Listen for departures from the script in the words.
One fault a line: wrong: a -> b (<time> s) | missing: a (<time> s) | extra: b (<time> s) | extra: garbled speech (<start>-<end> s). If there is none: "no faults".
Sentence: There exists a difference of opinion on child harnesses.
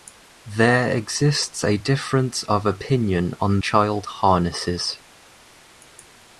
no faults